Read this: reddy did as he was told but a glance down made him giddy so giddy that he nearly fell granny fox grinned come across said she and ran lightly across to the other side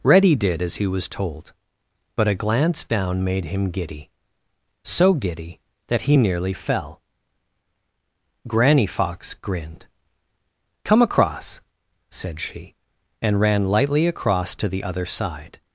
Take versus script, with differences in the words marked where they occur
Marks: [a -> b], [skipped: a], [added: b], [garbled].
reddy did as he was told but a glance down made him giddy so giddy that he nearly fell granny fox grinned come across said she and ran lightly across to the other side